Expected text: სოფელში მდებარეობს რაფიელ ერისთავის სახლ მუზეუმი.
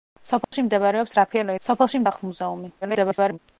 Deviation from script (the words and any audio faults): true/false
true